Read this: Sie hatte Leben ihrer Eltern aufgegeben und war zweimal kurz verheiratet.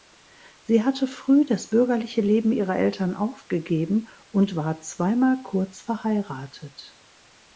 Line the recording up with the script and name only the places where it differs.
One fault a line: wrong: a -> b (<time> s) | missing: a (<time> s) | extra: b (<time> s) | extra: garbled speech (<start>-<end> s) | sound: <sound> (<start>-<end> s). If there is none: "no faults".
extra: früh das bürgerliche (1.1 s)